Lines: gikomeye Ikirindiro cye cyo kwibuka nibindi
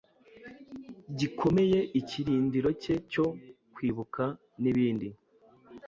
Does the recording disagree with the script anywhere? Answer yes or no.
no